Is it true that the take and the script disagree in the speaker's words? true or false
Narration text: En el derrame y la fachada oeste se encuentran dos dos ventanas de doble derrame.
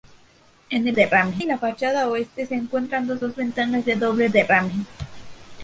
false